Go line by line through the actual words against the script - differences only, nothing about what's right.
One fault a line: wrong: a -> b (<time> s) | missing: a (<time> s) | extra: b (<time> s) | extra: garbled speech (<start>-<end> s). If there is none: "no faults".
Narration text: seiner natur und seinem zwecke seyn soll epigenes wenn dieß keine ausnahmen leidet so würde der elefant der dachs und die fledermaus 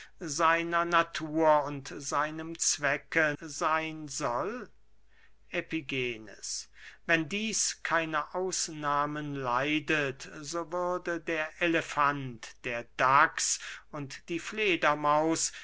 no faults